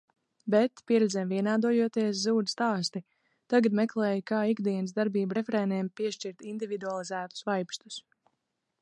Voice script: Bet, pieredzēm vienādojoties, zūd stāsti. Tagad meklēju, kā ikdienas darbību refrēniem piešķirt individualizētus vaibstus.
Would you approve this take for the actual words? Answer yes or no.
yes